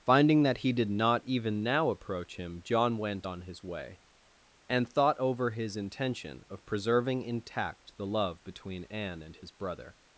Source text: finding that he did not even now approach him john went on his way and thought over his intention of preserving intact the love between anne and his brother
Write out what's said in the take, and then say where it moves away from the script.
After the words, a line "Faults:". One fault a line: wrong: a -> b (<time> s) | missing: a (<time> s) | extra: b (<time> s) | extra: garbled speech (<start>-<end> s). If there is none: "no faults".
finding that he did not even now approach him john went on his way and thought over his intention of preserving intact the love between anne and his brother
Faults:
no faults